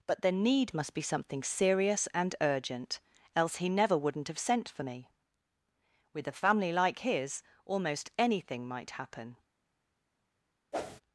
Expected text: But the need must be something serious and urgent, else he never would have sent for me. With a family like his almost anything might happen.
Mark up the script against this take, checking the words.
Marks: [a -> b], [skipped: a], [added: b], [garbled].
But the need must be something serious and urgent, else he never [would -> wouldn't] have sent for me. With a family like his almost anything might happen.